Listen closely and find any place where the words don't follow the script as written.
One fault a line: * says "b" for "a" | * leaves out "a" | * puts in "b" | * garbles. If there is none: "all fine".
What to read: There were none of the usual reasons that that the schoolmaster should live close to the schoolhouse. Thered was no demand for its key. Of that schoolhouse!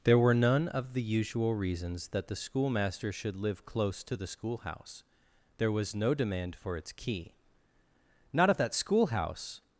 * leaves out "that"
* says "There" for "Thered"
* puts in "Not"